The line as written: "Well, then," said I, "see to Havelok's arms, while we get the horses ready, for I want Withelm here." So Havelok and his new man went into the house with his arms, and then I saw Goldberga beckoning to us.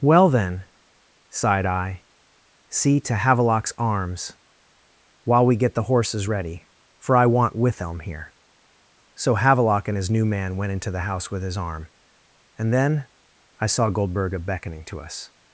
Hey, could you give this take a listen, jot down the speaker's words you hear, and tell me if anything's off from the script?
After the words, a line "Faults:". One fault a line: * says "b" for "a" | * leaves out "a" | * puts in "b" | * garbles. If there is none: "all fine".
"Well, then," sighed I, "see to Havelok's arms, while we get the horses ready, for I want Withelm here." So Havelok and his new man went into the house with his arm, and then I saw Goldberga beckoning to us.
Faults:
* says "sighed" for "said"
* says "arm" for "arms"